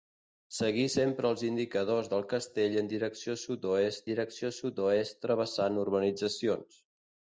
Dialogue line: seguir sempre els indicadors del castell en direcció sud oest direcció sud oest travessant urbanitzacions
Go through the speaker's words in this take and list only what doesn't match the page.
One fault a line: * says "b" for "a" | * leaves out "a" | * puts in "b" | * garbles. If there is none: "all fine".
all fine